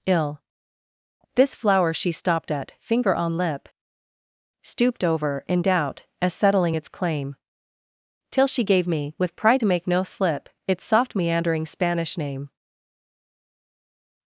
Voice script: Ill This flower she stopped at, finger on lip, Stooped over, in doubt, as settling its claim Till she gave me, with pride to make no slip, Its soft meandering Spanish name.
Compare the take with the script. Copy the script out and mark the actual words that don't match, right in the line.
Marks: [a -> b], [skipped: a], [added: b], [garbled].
Ill This flower she stopped at, finger on lip, Stooped over, in doubt, as settling its claim Till she gave me, with pride to make no slip, Its soft meandering Spanish name.